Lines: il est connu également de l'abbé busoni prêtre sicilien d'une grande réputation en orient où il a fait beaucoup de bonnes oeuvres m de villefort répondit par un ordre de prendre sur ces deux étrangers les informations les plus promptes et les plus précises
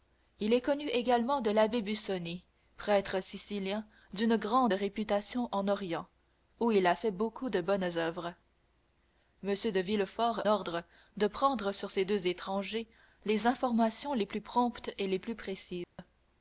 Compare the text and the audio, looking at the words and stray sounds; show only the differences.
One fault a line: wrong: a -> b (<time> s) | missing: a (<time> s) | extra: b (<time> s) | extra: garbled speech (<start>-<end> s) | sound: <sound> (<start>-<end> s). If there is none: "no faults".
missing: répondit par un (10.4 s)
sound: dropout (15.8-16.0 s)